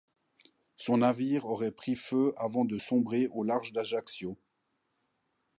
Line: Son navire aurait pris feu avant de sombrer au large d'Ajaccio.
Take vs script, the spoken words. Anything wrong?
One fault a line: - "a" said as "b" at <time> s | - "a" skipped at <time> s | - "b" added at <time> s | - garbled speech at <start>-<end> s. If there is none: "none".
none